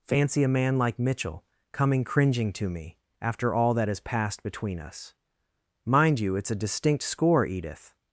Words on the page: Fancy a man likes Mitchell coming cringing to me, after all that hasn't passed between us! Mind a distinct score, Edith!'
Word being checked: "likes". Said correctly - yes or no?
no